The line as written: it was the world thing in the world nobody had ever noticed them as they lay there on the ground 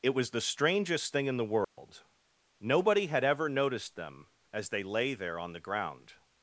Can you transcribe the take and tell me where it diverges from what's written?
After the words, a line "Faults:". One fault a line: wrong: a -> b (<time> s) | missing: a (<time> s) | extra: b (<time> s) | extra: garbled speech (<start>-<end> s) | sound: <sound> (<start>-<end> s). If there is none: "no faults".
it was the strangest thing in the world nobody had ever noticed them as they lay there on the ground
Faults:
wrong: world -> strangest (0.4 s)
sound: dropout (1.6-1.8 s)